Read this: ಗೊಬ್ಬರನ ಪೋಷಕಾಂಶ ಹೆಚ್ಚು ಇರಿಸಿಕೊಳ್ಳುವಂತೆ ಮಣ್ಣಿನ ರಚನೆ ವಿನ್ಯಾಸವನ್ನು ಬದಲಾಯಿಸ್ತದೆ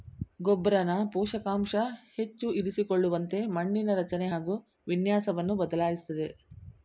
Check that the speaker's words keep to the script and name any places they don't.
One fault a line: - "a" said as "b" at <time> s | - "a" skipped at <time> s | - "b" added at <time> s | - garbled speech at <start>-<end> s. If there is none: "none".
- "ಹಾಗು" added at 4.3 s